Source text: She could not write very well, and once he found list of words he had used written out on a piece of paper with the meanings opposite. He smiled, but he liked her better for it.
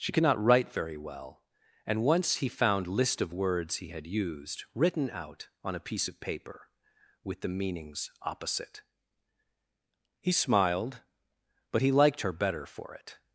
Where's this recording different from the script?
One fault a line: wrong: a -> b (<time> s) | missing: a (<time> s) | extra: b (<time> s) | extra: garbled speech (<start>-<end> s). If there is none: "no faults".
no faults